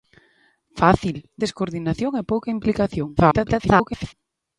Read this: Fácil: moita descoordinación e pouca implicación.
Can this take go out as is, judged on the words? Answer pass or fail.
fail